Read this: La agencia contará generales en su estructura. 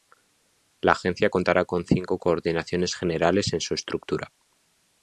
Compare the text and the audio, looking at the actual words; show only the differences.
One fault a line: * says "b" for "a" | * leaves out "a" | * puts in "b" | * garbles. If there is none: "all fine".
* puts in "con cinco coordinaciones"